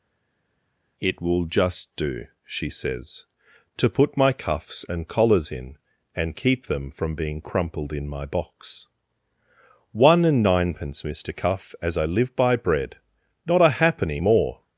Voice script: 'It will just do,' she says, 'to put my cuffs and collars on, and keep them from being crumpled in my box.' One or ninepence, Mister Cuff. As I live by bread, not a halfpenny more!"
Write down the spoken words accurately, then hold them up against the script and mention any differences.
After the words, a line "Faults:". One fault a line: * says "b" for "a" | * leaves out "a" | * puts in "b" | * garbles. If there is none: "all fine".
'It will just do,' she says, 'to put my cuffs and collars in, and keep them from being crumpled in my box.' One and ninepence, Mister Cuff. As I live by bread, not a halfpenny more!"
Faults:
* says "in" for "on"
* says "and" for "or"